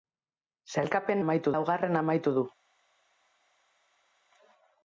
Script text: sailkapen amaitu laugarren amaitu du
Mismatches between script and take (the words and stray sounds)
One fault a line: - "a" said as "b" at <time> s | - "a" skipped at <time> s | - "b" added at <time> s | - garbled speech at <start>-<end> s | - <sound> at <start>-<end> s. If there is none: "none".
none